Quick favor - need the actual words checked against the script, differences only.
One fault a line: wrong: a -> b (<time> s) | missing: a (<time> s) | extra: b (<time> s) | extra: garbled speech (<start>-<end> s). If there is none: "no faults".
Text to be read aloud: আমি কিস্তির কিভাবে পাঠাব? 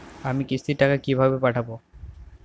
extra: টাকা (0.8 s)